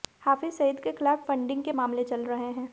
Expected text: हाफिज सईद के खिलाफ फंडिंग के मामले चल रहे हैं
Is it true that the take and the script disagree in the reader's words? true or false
false